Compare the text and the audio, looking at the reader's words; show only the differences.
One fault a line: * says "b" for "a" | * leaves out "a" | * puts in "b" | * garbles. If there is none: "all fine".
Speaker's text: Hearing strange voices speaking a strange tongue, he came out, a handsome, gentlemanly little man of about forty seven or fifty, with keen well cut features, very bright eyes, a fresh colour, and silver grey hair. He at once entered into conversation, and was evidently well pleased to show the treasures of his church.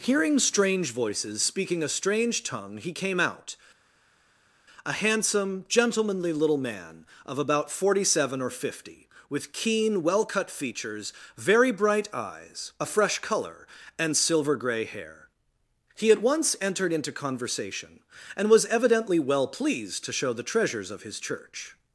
all fine